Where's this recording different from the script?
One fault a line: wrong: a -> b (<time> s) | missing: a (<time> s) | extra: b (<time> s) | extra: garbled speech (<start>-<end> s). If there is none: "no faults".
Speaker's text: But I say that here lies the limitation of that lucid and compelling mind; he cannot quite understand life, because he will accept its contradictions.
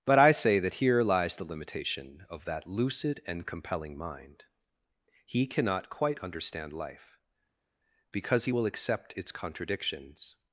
no faults